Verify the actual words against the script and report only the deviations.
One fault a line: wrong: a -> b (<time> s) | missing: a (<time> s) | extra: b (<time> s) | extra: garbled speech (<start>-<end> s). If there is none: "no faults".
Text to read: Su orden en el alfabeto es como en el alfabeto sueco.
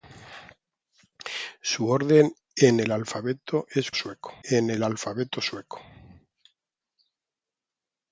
wrong: como -> sueco (3.9 s)